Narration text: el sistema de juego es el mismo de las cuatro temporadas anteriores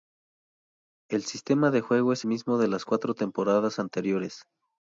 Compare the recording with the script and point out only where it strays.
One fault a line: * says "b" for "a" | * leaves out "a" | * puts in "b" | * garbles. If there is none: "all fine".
* leaves out "el"